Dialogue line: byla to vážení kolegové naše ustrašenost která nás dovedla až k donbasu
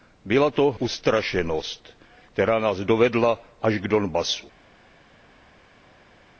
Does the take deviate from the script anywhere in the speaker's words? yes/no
yes